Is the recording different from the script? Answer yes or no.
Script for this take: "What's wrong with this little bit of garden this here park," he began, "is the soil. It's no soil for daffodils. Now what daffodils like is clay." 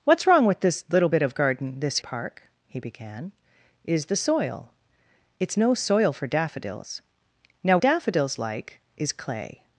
yes